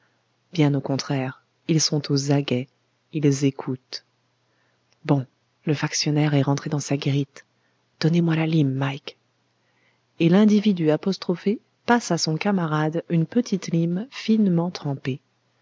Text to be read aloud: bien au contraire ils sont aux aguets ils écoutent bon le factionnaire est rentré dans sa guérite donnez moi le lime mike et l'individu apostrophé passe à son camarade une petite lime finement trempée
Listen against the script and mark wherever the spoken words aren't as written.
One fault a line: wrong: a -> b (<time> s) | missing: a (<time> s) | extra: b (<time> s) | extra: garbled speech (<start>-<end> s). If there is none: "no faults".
wrong: le -> la (8.3 s)